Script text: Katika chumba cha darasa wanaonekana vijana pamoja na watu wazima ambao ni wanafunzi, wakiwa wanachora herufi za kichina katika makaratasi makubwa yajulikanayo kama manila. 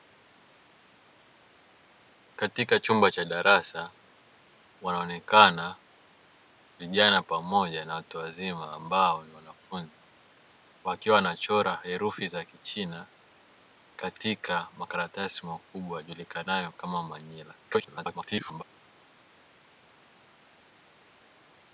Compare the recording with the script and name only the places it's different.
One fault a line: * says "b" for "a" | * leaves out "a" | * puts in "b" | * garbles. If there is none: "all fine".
* garbles